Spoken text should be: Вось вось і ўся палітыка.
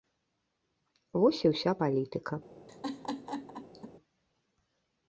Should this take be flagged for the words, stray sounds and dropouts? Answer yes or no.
yes